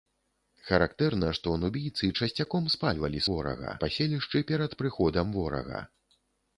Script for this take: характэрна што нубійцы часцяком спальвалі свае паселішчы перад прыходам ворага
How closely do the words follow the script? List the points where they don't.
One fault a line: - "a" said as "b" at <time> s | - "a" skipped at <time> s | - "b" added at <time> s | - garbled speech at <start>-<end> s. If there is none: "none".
- "свае" said as "ворага" at 3.3 s